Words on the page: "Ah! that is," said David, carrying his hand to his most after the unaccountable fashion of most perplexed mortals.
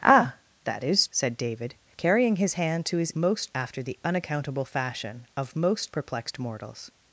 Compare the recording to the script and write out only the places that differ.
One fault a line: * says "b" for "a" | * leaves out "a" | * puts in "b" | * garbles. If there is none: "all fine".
all fine